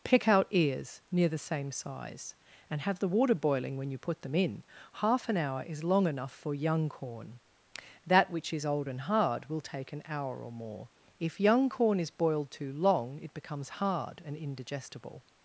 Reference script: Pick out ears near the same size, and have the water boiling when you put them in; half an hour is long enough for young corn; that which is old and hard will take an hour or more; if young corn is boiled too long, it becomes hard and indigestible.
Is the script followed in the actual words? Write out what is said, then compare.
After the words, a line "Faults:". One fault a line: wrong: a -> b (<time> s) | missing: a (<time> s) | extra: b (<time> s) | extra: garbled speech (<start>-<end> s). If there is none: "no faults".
Pick out ears near the same size, and have the water boiling when you put them in; half an hour is long enough for young corn; that which is old and hard will take an hour or more; if young corn is boiled too long, it becomes hard and indigestible.
Faults:
no faults